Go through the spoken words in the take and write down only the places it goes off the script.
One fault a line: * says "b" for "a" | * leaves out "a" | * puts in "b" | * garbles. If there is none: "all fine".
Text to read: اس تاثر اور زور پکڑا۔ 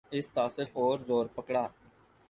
all fine